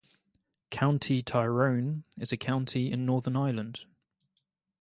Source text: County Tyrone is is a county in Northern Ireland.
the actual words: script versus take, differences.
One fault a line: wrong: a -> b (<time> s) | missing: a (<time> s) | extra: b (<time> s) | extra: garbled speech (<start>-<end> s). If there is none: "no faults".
missing: is (2.3 s)